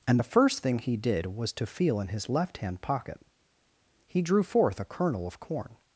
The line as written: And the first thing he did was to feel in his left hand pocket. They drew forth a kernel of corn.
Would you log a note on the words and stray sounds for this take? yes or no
yes